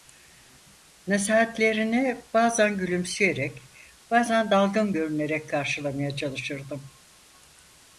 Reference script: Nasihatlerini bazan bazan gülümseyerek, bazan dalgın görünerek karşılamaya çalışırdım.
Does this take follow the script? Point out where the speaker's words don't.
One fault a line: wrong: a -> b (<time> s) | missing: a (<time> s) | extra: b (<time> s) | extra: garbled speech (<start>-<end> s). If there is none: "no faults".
missing: bazan (2.8 s)